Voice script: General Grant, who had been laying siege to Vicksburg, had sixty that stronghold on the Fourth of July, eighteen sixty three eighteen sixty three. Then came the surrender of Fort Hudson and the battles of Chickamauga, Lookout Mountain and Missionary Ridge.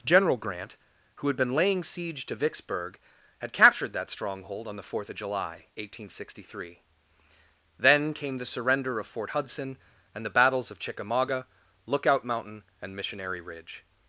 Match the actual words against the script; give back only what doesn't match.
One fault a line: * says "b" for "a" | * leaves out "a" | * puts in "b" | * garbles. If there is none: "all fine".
* says "captured" for "sixty"
* leaves out "eighteen sixty three"